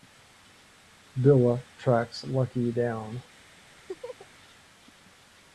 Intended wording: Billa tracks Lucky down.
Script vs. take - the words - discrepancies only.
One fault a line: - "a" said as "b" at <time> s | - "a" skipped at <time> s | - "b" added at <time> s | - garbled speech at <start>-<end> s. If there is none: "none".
none